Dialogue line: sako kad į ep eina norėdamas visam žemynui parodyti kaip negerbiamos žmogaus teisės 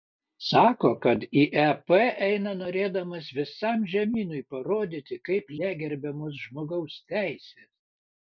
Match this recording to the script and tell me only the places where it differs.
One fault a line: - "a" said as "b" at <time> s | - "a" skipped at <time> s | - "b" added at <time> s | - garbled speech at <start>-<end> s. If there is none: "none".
none